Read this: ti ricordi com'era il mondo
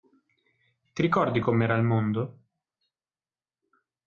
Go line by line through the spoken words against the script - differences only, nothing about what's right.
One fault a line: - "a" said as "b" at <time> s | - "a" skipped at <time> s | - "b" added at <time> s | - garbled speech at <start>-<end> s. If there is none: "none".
none